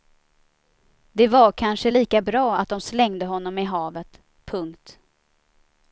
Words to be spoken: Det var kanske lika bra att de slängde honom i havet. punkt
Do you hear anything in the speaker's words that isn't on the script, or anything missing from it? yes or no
no